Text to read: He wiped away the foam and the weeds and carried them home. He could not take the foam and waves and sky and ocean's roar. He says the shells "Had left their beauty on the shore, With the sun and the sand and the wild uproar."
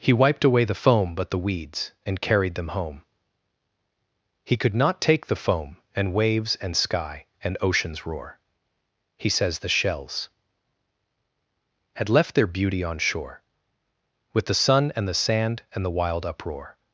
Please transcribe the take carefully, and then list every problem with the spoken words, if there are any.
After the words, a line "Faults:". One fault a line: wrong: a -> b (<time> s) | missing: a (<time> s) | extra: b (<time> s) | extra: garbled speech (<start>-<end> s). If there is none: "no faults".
He wiped away the foam but the weeds and carried them home. He could not take the foam and waves and sky and ocean's roar. He says the shells "Had left their beauty on shore, With the sun and the sand and the wild uproar."
Faults:
wrong: and -> but (1.1 s)
missing: the (13.0 s)